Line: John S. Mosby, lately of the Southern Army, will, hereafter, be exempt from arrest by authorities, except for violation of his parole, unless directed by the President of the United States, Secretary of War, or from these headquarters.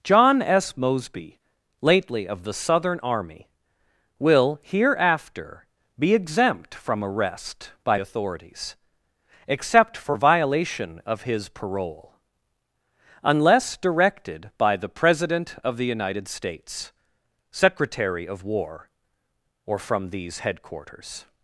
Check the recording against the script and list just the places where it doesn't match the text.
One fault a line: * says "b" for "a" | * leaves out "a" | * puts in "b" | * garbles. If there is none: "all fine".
all fine